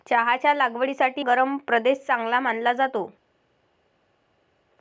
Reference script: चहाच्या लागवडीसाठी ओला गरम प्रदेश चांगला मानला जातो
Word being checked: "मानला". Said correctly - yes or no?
yes